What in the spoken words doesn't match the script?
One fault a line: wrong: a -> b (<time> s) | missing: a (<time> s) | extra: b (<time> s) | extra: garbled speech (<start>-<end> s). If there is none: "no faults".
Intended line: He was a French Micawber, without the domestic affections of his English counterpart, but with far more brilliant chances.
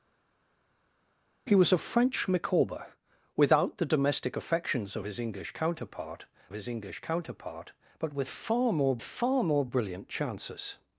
extra: his English counterpart (6.5 s)
extra: far more (9.0 s)